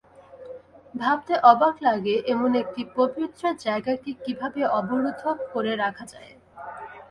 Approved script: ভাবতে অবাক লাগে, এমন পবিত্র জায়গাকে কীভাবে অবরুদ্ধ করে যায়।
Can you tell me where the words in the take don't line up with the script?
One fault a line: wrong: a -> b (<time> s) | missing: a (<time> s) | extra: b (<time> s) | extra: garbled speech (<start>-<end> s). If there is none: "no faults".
extra: একটি (2.6 s)
extra: রাখা (5.8 s)